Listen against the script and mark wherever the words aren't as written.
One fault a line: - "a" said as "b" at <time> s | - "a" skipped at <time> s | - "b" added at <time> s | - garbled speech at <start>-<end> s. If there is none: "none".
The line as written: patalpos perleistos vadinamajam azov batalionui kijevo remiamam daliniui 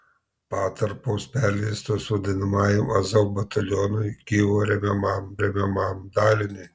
- "remiamam" added at 5.4 s